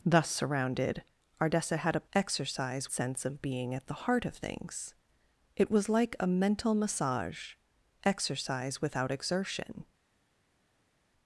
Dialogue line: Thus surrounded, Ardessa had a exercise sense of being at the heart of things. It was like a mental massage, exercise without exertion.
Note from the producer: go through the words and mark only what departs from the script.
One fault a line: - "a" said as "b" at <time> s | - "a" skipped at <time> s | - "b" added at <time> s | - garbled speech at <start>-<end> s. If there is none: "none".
none